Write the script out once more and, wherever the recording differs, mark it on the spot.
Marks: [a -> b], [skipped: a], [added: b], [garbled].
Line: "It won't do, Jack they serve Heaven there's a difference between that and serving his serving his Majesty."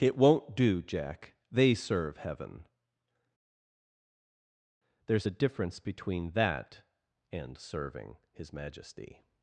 "It won't do, Jack they serve Heaven there's a difference between that and serving his [skipped: serving his] Majesty."